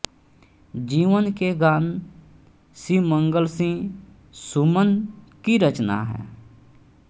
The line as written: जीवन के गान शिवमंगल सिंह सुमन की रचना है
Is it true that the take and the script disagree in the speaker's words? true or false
false